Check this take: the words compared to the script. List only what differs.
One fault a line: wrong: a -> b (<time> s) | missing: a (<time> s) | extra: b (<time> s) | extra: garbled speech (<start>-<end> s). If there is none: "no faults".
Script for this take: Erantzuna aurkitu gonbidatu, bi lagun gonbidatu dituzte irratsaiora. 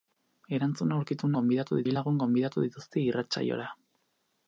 no faults